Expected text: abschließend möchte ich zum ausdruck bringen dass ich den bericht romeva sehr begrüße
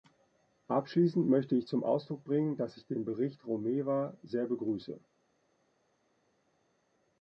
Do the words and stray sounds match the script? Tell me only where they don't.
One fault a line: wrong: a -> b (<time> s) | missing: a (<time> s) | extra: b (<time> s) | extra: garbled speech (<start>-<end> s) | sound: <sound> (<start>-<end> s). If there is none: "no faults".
no faults